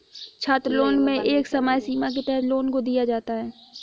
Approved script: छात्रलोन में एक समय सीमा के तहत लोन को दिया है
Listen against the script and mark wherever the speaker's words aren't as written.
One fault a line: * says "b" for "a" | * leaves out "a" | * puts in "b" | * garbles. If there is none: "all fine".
* puts in "जाता"